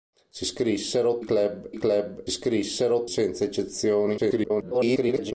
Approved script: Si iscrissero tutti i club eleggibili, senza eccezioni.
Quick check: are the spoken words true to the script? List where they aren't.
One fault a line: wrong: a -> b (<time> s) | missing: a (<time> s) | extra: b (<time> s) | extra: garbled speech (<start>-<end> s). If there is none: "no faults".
wrong: tutti -> club (1.2 s)
wrong: eleggibili -> iscrissero (2.3 s)
extra: garbled speech (4.2-5.3 s)